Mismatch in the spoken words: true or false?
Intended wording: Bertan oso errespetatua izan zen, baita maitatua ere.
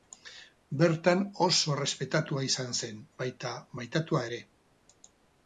false